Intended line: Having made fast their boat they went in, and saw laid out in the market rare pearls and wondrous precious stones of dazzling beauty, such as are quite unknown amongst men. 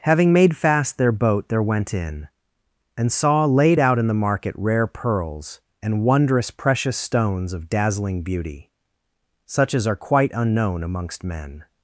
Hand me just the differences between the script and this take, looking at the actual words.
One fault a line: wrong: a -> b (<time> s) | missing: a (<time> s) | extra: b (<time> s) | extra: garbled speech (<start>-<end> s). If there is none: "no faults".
wrong: they -> there (1.5 s)